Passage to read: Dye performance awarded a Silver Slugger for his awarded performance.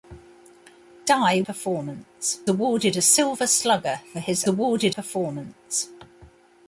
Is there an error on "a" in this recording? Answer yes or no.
no